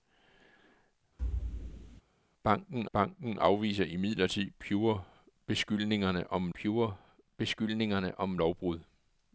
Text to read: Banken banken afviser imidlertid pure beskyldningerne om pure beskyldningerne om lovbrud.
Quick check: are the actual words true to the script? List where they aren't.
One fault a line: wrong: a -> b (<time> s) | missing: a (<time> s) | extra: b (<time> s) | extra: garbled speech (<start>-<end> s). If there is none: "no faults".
no faults